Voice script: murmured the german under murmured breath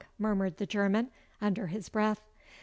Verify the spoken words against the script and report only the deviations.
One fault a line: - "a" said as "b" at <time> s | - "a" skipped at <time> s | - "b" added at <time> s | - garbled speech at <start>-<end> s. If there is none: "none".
- "murmured" said as "his" at 1.7 s